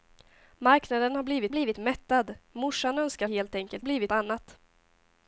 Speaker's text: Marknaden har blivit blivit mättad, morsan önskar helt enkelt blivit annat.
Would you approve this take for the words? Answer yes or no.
yes